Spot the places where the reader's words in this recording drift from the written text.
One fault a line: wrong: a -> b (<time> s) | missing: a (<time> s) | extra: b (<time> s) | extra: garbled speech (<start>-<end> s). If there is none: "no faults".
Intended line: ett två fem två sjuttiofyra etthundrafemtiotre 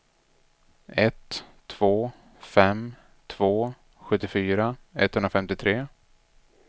no faults